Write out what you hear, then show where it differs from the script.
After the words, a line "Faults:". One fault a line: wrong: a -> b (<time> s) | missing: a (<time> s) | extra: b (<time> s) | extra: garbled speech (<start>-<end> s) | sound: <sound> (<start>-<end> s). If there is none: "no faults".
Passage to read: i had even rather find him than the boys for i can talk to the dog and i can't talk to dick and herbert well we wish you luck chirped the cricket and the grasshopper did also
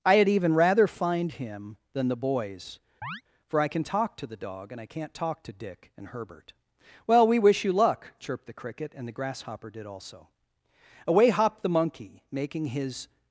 i had even rather find him than the boys for i can talk to the dog and i can't talk to dick and herbert well we wish you luck chirped the cricket and the grasshopper did also away hopped the monkey making his
Faults:
sound: chirp (3.0-3.2 s)
extra: away hopped the monkey making his (11.1 s)